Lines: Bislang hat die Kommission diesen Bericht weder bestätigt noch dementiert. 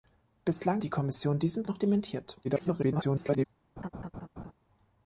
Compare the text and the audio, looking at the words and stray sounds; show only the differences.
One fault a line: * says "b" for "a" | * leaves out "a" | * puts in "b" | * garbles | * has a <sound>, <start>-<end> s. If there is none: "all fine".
* leaves out "hat"
* leaves out "Bericht weder bestätigt"
* garbles
* has a laugh, 3.8-4.5 s